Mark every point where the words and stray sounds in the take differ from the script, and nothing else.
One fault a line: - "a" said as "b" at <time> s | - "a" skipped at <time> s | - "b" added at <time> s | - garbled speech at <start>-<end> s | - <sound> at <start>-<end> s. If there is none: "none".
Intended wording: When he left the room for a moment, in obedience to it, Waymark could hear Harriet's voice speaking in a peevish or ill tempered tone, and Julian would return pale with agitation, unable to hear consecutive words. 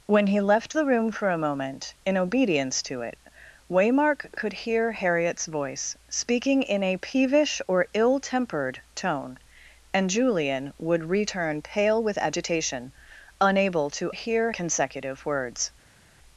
none